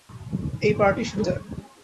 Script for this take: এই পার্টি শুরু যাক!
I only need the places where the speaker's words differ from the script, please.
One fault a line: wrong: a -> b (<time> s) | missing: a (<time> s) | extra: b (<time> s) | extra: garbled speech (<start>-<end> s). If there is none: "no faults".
no faults